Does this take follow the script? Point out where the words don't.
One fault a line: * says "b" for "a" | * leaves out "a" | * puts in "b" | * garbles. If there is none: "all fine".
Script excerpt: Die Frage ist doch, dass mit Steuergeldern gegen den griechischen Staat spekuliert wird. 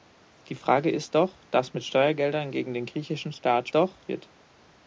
* says "doch" for "spekuliert"